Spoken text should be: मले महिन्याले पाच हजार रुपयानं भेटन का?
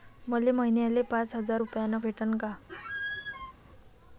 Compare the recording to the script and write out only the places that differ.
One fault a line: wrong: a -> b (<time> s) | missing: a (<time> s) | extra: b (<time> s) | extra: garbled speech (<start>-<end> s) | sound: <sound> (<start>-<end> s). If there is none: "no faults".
sound: squeak (2.7-3.5 s)